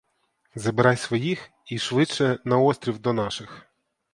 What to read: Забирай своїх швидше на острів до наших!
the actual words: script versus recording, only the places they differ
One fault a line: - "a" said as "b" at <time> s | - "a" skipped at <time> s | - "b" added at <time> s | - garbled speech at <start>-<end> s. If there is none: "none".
- "і" added at 1.6 s